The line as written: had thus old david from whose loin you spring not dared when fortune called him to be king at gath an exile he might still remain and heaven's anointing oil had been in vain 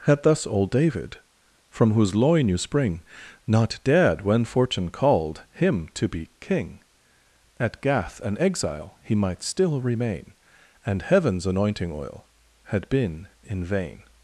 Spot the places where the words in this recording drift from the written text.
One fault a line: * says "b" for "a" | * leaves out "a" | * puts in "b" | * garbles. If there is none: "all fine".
all fine